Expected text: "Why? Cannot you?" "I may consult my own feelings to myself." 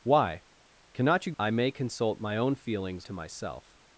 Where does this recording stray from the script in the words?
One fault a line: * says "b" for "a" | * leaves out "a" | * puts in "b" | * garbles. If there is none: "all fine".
all fine